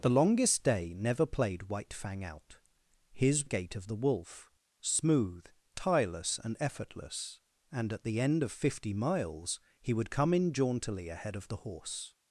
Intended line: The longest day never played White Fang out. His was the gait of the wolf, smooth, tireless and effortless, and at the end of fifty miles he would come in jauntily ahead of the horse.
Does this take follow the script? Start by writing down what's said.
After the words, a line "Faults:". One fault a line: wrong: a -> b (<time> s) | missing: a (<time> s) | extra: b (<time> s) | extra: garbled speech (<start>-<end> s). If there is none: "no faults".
The longest day never played White Fang out. His gait of the wolf, smooth, tireless and effortless, and at the end of fifty miles he would come in jauntily ahead of the horse.
Faults:
missing: was the (3.5 s)